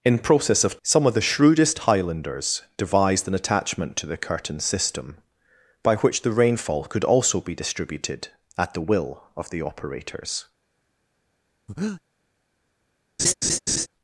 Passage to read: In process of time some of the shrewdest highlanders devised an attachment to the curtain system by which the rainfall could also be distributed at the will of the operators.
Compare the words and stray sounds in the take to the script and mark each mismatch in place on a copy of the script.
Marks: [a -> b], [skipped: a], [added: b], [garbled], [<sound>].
In process of [skipped: time] some of the shrewdest highlanders devised an attachment to the curtain system by which the rainfall could also be distributed at the will of the operators. [breath] [laugh]